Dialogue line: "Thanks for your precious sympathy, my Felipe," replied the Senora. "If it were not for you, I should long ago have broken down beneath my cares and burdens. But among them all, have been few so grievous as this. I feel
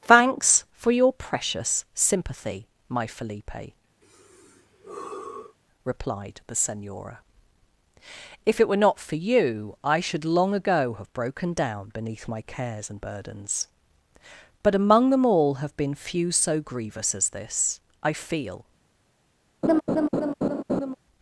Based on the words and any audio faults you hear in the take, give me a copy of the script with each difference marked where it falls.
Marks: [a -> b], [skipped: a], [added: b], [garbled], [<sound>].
"Thanks for your precious sympathy, my Felipe," [sigh] replied the Senora. "If it were not for you, I should long ago have broken down beneath my cares and burdens. But among them all, have been few so grievous as this. I feel [laugh]